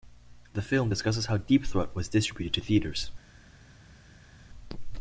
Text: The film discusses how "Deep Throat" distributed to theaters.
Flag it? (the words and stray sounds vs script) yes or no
yes